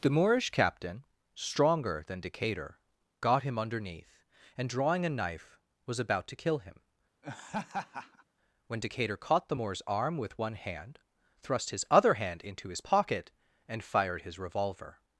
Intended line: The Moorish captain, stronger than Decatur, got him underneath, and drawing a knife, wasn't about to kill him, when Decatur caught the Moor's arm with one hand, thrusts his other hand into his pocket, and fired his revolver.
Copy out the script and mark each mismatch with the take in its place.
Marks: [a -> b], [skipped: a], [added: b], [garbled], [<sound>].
The Moorish captain, stronger than Decatur, got him underneath, and drawing a knife, [wasn't -> was] about to kill him, [laugh] when Decatur caught the Moor's arm with one hand, [thrusts -> thrust] his other hand into his pocket, and fired his revolver.